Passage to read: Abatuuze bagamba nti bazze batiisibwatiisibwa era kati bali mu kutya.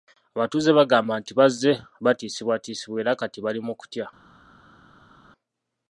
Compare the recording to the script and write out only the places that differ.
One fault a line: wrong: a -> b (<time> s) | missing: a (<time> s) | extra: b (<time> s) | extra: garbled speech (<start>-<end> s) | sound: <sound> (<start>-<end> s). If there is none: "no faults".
no faults